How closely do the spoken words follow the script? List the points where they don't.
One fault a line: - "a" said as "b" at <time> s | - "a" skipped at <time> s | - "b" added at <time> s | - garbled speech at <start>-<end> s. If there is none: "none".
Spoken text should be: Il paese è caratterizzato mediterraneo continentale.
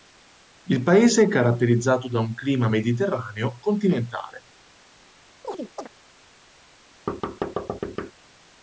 - "da un clima" added at 2.1 s